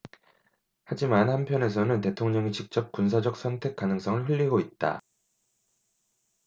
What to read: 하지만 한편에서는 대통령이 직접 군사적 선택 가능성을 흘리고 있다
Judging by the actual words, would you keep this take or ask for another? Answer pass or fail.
pass